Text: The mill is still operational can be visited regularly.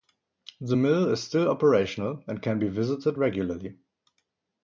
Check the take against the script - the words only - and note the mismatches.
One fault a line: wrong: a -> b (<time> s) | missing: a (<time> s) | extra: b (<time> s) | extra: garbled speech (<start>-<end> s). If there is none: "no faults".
extra: and (2.3 s)